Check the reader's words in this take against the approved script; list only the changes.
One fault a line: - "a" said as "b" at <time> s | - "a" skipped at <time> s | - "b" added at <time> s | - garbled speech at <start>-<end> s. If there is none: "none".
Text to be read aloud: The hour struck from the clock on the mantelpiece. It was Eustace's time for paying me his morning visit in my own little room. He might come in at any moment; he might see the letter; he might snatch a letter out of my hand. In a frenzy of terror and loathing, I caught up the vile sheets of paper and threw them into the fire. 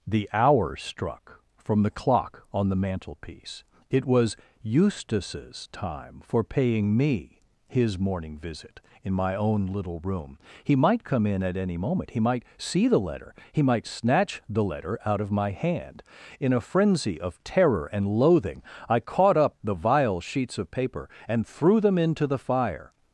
- "a" said as "the" at 14.5 s